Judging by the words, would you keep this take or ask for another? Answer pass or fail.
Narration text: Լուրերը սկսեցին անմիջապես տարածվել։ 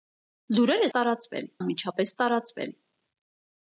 fail